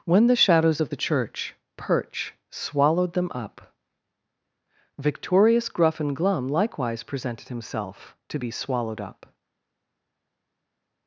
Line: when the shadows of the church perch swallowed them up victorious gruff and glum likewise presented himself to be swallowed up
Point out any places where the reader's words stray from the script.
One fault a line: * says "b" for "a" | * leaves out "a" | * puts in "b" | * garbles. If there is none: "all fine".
all fine